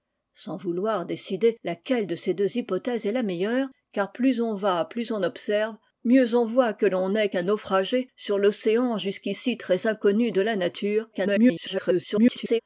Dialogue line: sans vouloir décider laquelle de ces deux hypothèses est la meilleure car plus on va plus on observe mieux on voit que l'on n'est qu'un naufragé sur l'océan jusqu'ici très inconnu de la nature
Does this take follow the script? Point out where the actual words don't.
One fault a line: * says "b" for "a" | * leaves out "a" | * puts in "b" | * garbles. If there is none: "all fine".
* garbles